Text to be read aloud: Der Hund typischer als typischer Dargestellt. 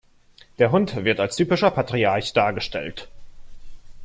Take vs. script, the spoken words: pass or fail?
fail